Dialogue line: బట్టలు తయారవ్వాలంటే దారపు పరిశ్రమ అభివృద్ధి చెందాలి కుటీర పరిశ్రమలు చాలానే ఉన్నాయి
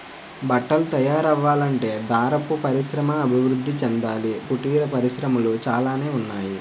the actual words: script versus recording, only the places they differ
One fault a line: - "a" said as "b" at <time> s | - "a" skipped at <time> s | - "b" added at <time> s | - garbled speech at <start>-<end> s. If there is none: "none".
none